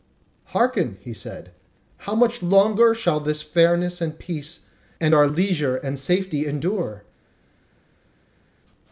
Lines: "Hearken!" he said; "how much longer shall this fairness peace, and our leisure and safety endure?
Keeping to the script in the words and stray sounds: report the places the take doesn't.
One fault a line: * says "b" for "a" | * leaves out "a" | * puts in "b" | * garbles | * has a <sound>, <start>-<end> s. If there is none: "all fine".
* puts in "and"